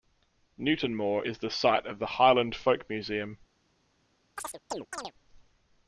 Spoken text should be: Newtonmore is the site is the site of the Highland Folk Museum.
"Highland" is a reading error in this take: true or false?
false